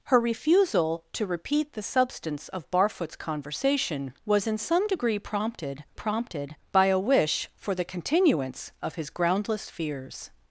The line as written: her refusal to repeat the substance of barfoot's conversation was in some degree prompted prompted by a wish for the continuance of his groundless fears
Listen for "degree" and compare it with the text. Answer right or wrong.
right